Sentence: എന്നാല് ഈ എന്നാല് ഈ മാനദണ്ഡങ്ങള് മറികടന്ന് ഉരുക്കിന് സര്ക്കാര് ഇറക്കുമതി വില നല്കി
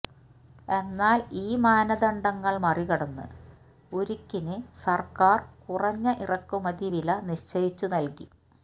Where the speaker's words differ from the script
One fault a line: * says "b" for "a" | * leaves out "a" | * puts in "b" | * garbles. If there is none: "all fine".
* leaves out "എന്നാല് ഈ"
* puts in "കുറഞ്ഞ"
* puts in "നിശ്ചയിച്ചു"